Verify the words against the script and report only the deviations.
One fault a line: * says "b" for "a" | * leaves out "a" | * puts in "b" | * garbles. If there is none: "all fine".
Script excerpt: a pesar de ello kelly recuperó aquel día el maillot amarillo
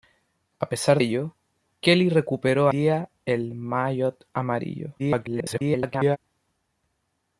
* leaves out "de"
* leaves out "aquel"
* garbles